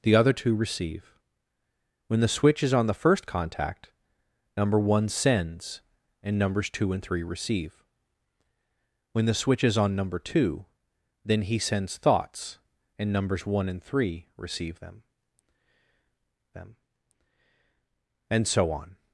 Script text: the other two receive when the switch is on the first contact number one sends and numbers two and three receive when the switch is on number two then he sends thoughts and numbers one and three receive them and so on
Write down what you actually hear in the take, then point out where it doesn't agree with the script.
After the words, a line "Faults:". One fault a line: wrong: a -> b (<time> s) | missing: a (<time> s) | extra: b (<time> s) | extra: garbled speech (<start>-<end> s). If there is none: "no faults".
the other two receive when the switch is on the first contact number one sends and numbers two and three receive when the switch is on number two then he sends thoughts and numbers one and three receive them them and so on
Faults:
extra: them (16.5 s)